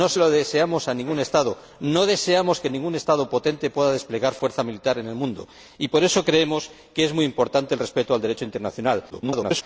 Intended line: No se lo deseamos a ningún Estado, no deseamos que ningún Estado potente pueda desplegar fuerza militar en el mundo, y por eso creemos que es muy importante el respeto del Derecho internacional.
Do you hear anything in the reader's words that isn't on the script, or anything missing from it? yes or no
yes